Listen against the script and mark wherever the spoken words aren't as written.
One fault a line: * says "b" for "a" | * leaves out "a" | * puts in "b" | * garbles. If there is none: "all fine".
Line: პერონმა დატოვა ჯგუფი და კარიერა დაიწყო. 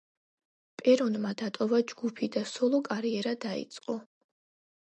* puts in "სოლო"